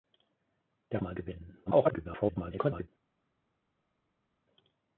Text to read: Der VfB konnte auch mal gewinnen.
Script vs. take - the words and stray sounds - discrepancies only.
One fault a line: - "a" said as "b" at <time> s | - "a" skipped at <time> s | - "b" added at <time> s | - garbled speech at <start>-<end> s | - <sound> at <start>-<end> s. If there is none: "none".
- "VfB konnte auch" skipped at 1.0 s
- garbled speech at 1.7-2.9 s